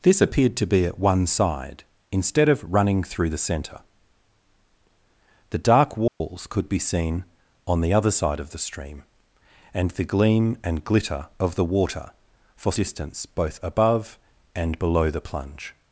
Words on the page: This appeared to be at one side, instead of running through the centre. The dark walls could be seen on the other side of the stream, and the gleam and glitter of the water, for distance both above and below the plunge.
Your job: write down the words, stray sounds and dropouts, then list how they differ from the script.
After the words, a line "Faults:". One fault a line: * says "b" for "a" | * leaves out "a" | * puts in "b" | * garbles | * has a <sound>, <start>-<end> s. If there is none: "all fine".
This appeared to be at one side, instead of running through the centre. The dark walls could be seen on the other side of the stream, and the gleam and glitter of the water, for distance both above and below the plunge.
Faults:
* has a dropout, 6.1-6.2 s